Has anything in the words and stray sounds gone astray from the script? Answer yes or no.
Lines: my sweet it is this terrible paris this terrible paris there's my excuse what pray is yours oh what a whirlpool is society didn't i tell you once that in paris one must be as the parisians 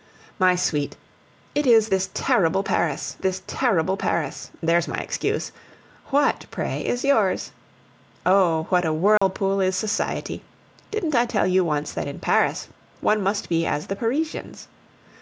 yes